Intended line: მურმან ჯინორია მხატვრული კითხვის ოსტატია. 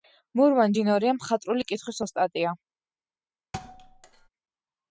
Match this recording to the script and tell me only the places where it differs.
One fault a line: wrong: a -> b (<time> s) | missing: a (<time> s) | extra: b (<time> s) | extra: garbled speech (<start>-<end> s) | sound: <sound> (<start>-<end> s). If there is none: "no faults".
sound: thud (3.5-4.3 s)